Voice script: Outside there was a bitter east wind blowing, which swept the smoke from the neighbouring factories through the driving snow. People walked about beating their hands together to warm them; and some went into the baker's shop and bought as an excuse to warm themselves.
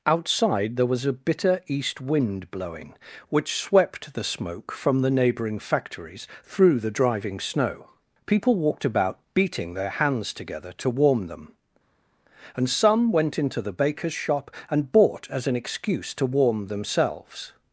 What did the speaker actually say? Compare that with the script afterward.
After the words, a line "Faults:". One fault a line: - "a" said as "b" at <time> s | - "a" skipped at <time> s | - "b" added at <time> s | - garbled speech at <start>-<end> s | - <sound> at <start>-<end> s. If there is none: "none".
Outside there was a bitter east wind blowing, which swept the smoke from the neighbouring factories through the driving snow. People walked about beating their hands together to warm them; and some went into the baker's shop and bought as an excuse to warm themselves.
Faults:
none